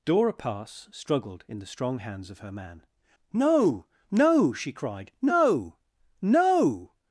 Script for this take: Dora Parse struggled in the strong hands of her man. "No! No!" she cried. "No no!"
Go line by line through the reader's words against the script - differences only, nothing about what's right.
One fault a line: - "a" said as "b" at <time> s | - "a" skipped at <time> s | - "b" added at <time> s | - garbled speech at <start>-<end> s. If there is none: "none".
none